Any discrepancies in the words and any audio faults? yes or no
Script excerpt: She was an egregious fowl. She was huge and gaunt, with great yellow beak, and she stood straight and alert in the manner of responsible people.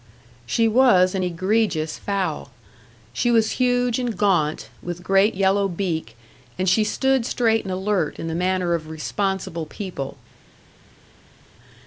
no